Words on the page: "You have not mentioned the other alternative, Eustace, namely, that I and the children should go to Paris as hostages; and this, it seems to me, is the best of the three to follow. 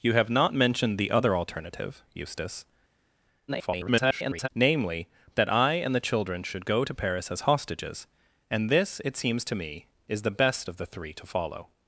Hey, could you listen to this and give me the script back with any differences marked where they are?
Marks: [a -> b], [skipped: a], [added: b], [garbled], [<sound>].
"You have not mentioned the other alternative, Eustace, [garbled] namely, that I and the children should go to Paris as hostages; and this, it seems to me, is the best of the three to follow.